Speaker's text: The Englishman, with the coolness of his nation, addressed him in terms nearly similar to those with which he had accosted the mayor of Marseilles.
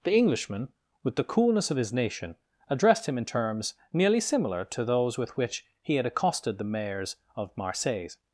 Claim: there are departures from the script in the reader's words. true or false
true